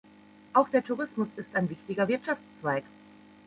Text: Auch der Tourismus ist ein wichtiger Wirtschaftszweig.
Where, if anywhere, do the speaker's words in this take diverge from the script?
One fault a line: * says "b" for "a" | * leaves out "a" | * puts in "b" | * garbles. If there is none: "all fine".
all fine